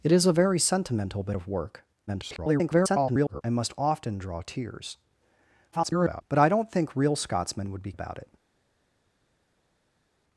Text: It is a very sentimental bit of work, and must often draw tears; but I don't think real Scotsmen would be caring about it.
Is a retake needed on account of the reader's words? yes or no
yes